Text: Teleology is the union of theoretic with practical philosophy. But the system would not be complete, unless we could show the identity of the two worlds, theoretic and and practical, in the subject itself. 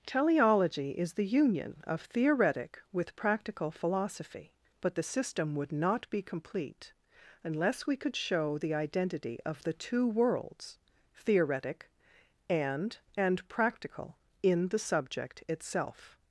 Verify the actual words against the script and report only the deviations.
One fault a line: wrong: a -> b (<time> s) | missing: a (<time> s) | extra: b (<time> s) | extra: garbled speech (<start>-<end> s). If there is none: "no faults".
no faults